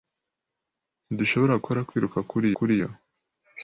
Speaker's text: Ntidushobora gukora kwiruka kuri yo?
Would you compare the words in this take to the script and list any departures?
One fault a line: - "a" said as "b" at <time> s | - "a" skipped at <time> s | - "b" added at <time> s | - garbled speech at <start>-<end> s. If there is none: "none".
- "kuri" added at 2.6 s